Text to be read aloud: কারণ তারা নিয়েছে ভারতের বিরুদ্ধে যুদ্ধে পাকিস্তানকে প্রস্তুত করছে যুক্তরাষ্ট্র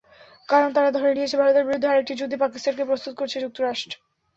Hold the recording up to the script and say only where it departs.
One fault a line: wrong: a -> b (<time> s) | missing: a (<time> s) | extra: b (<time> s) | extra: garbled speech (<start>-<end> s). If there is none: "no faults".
extra: ধরে (0.9 s)
extra: আরেকটি (1.9 s)